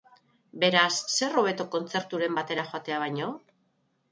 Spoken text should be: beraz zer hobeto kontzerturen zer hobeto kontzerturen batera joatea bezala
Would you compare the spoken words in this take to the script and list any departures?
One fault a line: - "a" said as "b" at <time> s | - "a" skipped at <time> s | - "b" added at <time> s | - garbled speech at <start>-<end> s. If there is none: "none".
- "zer hobeto kontzerturen" skipped at 2.4 s
- "bezala" said as "baino" at 3.1 s